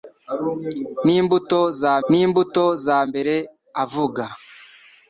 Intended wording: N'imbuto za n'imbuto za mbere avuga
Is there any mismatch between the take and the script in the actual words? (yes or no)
no